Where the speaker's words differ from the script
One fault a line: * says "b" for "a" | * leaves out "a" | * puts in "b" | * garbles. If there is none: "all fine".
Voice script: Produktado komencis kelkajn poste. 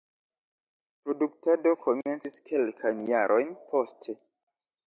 * puts in "jarojn"